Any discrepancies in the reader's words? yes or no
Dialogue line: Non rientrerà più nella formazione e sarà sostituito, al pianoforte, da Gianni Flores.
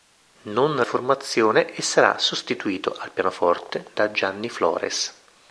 yes